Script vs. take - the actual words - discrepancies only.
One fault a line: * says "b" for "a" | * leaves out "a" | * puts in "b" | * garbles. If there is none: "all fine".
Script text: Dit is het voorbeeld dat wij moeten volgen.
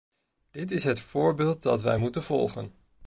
all fine